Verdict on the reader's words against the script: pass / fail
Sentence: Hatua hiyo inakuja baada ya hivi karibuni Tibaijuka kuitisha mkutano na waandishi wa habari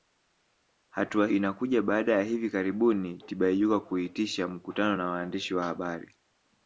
fail